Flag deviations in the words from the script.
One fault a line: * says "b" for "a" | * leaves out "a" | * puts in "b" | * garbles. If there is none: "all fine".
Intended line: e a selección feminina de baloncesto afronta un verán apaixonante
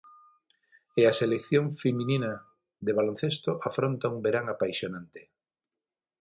all fine